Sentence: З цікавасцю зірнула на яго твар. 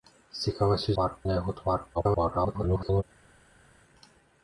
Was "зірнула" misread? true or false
true